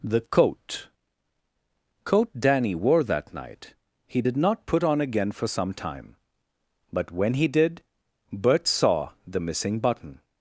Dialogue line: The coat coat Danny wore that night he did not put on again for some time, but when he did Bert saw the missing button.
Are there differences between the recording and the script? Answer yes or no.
no